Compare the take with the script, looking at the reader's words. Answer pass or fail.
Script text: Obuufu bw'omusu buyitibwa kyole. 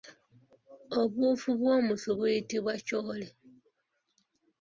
pass